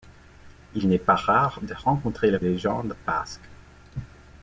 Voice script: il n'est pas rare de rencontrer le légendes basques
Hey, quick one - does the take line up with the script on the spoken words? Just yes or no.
yes